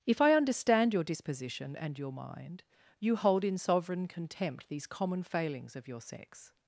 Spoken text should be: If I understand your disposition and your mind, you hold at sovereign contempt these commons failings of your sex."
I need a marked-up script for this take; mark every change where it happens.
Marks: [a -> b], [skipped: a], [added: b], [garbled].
If I understand your disposition and your mind, you hold [at -> in] sovereign contempt these [commons -> common] failings of your sex."